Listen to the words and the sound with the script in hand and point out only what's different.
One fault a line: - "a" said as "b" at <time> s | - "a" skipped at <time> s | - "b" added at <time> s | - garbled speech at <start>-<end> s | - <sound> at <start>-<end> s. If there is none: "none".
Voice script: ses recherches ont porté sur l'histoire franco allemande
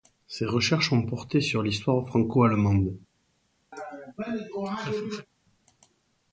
- laugh at 3.7-5.3 s